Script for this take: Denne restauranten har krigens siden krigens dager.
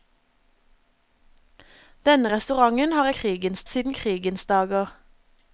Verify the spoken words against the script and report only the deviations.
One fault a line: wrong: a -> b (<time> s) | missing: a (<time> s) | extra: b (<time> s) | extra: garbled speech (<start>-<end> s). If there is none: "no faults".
no faults